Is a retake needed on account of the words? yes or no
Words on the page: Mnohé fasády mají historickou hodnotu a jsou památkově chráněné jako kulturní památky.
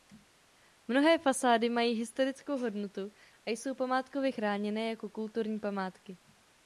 no